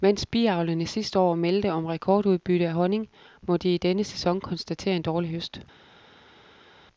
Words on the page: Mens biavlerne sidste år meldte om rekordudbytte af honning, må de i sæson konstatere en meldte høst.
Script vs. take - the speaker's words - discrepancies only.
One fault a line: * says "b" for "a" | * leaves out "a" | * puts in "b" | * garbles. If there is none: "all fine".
* puts in "denne"
* says "dårlig" for "meldte"